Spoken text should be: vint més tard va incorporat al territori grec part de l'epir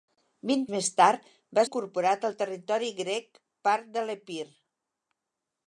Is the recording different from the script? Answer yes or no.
no